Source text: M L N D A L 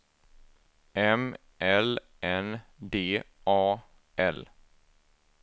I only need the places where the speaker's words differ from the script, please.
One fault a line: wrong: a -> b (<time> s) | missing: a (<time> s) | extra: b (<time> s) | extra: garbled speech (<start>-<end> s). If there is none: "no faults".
no faults